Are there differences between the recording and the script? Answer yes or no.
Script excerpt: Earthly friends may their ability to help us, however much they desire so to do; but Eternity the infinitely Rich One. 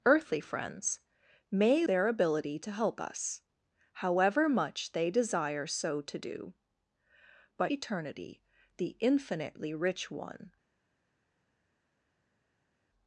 no